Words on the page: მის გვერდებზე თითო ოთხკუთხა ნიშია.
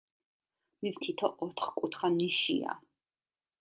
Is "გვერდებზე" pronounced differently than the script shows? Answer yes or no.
yes